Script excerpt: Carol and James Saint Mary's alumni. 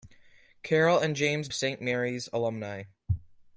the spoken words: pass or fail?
pass